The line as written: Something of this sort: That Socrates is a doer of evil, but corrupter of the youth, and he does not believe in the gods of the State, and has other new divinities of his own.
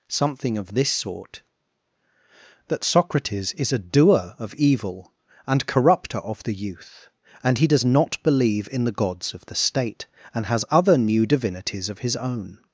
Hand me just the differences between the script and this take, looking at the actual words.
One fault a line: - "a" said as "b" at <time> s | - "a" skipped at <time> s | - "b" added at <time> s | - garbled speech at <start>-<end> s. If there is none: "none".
- "but" said as "and" at 5.5 s